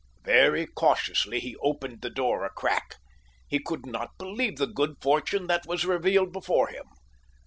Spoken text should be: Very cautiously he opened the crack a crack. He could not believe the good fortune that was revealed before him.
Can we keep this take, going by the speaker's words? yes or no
no